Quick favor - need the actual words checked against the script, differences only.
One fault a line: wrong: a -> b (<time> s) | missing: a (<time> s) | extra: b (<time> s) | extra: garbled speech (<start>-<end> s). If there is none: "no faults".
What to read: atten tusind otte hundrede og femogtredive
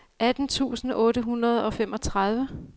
no faults